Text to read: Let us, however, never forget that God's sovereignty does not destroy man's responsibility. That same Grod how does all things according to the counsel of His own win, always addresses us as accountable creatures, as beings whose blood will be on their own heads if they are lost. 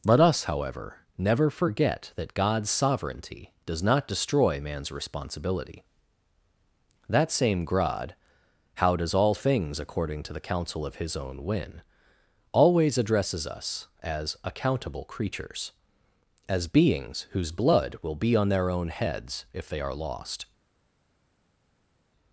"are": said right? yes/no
yes